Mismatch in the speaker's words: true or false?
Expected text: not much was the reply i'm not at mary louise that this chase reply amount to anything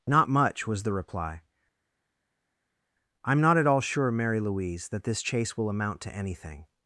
true